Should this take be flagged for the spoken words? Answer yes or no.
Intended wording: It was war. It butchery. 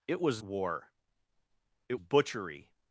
no